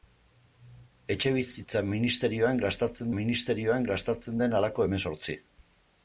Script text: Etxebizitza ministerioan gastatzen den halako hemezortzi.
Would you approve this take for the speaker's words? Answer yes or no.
no